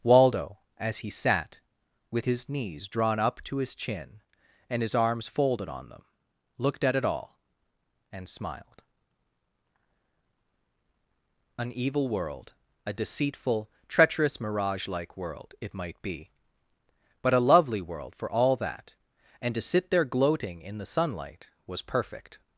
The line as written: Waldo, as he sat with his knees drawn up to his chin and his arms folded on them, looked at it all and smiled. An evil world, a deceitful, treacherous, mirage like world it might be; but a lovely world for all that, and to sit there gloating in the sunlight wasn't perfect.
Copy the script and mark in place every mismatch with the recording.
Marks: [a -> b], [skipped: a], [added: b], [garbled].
Waldo, as he sat with his knees drawn up to his chin and his arms folded on them, looked at it all and smiled. An evil world, a deceitful, treacherous, mirage like world it might be; but a lovely world for all that, and to sit there gloating in the sunlight [wasn't -> was] perfect.